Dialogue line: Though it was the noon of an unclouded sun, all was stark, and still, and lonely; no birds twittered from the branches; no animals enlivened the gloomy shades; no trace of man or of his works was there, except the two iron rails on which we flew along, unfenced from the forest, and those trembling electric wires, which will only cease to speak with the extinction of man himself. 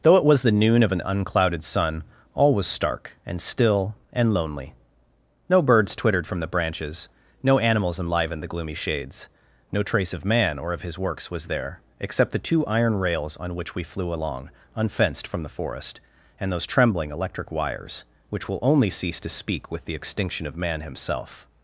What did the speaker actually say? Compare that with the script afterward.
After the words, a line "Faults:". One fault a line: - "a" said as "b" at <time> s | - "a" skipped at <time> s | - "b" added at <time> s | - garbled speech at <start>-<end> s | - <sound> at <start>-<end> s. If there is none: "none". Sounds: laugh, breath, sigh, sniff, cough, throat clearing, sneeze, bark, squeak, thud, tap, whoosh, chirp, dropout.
Though it was the noon of an unclouded sun, all was stark, and still, and lonely; no birds twittered from the branches; no animals enlivened the gloomy shades; no trace of man or of his works was there, except the two iron rails on which we flew along, unfenced from the forest, and those trembling electric wires, which will only cease to speak with the extinction of man himself.
Faults:
none